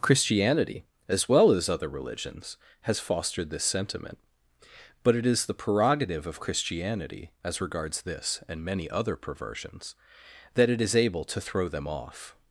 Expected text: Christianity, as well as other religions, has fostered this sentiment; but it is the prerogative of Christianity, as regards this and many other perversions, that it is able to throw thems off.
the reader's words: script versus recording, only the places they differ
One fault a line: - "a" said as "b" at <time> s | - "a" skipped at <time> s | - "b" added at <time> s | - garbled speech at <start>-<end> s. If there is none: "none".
- "thems" said as "them" at 11.7 s